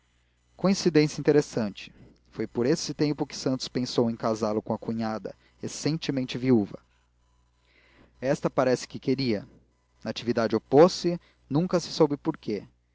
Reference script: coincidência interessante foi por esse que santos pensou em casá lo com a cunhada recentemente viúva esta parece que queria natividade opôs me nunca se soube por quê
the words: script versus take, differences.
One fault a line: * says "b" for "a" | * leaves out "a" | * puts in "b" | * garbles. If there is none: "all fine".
* puts in "tempo"
* says "se" for "me"